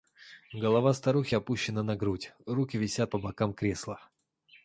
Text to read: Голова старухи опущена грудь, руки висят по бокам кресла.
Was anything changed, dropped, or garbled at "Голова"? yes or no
no